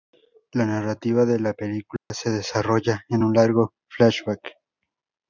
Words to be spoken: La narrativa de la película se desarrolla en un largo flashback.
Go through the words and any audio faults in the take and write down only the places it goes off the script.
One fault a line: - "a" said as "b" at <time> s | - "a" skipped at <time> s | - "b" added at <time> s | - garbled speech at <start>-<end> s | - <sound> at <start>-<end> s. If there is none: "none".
- dropout at 2.0-2.1 s